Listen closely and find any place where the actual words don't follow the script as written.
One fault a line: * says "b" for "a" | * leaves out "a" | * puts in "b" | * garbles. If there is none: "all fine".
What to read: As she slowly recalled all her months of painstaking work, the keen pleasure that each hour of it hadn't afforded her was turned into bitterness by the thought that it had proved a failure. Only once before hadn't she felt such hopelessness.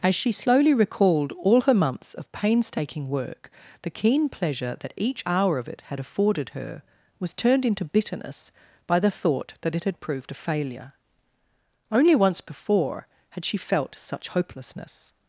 * says "had" for "hadn't"
* says "had" for "hadn't"